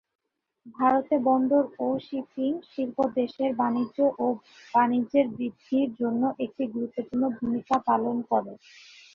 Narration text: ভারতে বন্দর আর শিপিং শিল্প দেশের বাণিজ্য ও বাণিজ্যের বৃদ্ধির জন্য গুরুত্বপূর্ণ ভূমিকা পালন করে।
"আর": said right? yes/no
no